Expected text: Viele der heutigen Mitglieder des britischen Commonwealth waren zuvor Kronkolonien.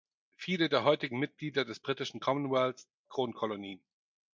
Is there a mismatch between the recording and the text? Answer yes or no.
yes